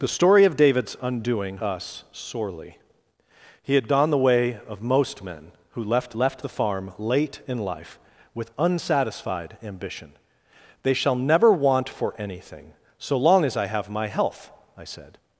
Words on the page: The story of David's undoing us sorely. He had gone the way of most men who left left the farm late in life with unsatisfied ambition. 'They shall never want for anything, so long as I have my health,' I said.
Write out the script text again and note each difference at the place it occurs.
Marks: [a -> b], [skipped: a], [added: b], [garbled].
The story of David's undoing us sorely. He had gone the way of most men who left left the farm late in life with unsatisfied ambition. 'They shall never want for anything, so long as I have my health,' I said.